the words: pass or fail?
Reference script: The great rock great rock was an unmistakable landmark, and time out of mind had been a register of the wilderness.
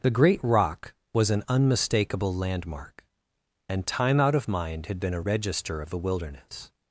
fail